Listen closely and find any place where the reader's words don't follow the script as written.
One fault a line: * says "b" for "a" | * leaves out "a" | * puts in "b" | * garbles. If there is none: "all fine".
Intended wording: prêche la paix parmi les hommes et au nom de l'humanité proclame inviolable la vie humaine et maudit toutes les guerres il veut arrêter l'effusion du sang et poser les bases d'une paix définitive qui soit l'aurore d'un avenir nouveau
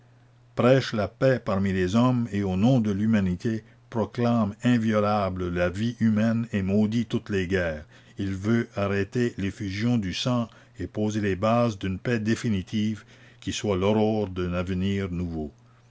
all fine